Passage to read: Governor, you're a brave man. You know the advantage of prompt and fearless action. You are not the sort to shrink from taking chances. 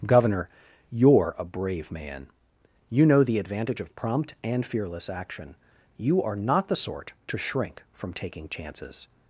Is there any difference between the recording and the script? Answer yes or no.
no